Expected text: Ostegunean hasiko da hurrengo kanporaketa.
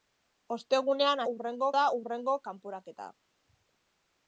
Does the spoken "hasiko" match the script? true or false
false